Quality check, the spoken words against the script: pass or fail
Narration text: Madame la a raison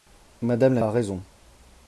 pass